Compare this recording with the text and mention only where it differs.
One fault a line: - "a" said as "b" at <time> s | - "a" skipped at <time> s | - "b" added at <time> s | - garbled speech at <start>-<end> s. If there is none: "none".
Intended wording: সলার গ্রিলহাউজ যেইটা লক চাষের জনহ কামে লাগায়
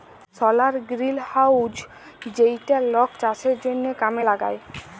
none